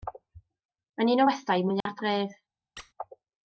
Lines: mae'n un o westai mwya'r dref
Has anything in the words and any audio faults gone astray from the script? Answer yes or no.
yes